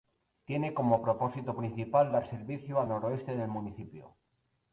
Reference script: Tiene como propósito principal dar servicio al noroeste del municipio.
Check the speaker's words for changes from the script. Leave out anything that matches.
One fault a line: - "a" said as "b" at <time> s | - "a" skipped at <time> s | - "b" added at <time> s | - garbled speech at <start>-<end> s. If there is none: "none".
none